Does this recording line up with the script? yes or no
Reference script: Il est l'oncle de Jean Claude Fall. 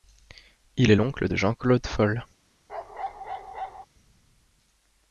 yes